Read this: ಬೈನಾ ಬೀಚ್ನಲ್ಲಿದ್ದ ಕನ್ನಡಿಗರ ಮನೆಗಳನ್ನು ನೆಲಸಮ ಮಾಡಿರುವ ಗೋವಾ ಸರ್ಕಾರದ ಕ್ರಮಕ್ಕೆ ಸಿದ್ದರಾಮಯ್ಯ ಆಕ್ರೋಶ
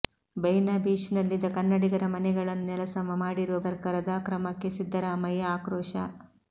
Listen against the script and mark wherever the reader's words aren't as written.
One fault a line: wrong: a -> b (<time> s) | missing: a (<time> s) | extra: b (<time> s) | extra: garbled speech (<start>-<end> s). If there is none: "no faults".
missing: ಗೋವಾ (3.6 s)